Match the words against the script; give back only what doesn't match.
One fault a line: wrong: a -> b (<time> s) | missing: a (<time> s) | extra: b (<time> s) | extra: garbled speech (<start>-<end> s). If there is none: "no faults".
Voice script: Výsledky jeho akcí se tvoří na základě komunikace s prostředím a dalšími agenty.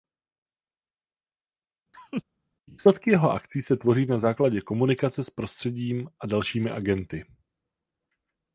no faults